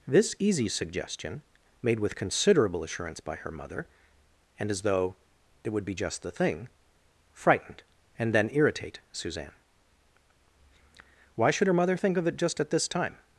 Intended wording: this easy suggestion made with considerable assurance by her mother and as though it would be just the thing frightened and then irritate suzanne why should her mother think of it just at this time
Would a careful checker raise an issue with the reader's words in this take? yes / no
no